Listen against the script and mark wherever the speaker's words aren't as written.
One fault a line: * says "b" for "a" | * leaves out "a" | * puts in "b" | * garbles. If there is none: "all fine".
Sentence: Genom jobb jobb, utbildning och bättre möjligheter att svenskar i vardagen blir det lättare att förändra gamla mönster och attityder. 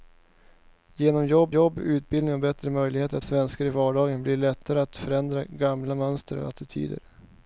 all fine